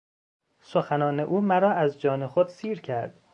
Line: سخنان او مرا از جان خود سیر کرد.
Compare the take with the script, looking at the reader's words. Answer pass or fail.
pass